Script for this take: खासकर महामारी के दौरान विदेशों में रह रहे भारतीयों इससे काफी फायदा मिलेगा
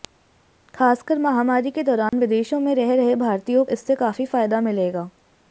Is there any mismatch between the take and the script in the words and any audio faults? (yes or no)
yes